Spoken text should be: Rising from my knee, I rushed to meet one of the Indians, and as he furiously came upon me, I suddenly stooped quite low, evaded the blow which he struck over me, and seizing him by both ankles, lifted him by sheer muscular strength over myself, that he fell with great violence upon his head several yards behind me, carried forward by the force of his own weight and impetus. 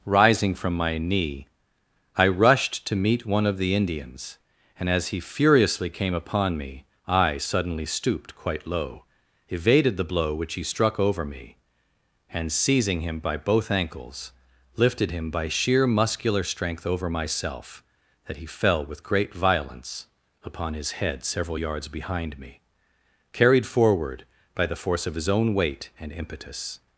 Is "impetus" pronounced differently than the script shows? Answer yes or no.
no